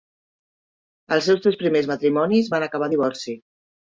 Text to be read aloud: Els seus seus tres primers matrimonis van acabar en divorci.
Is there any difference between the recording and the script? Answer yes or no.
yes